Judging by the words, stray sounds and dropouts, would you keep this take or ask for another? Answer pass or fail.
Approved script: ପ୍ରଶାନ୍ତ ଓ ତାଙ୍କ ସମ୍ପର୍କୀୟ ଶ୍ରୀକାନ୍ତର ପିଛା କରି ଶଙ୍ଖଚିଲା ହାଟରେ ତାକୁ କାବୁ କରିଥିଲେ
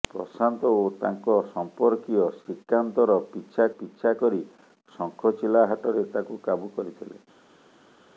fail